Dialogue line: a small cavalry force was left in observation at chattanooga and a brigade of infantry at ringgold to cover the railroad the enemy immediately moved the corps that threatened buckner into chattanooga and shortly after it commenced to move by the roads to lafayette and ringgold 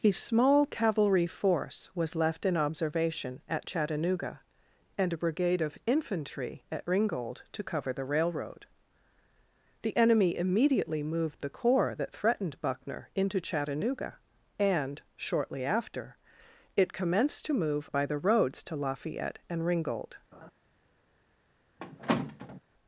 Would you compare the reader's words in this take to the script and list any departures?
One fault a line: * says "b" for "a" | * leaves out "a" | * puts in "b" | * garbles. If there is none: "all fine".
all fine